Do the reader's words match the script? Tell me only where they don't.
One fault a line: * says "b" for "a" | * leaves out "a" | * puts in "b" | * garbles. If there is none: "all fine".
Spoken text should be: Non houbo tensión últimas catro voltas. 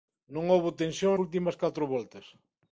all fine